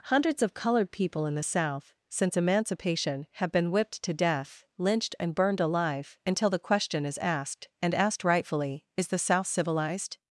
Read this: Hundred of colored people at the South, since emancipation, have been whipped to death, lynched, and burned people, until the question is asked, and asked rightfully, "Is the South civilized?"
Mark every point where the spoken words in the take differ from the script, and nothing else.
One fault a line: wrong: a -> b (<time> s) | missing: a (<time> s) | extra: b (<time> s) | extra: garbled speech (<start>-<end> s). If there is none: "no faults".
wrong: Hundred -> Hundreds (0.1 s)
wrong: at -> in (1.2 s)
wrong: people -> alive (5.6 s)